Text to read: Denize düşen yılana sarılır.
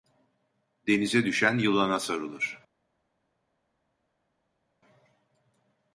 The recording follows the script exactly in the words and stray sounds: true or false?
true